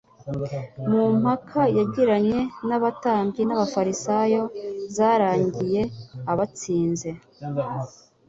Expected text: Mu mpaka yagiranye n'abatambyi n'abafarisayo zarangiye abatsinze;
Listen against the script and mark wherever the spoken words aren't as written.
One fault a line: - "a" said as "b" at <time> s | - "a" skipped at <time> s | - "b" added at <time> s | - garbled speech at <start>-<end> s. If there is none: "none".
none